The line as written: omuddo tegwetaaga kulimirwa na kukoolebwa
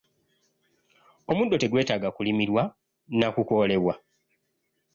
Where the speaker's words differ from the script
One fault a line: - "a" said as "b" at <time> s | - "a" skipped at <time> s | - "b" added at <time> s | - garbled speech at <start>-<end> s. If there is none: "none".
none